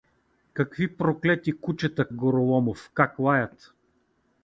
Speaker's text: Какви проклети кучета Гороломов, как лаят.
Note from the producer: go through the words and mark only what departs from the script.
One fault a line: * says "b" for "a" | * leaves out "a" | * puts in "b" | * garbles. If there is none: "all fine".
all fine